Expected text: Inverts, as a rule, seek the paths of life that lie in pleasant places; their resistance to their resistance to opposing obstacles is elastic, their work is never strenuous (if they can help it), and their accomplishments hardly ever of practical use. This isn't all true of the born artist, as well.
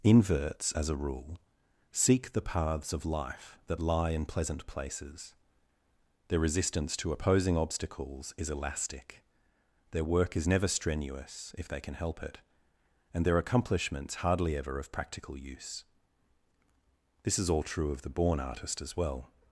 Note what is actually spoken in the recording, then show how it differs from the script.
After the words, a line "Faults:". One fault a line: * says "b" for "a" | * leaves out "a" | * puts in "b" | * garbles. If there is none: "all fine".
Inverts, as a rule, seek the paths of life that lie in pleasant places; their resistance to opposing obstacles is elastic, their work is never strenuous (if they can help it), and their accomplishments hardly ever of practical use. This is all true of the born artist, as well.
Faults:
* leaves out "their resistance to"
* says "is" for "isn't"